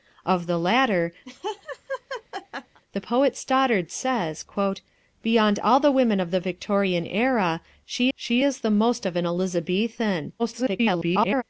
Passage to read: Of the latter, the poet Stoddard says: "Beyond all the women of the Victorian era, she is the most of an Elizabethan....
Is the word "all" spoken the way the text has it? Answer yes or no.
yes